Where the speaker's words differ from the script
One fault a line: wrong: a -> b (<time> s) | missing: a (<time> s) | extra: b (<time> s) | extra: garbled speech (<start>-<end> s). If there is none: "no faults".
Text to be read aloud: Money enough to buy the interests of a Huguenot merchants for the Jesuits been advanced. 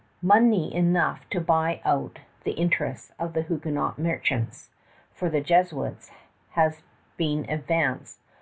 extra: out (1.9 s)
wrong: a -> the (3.3 s)
extra: has (6.5 s)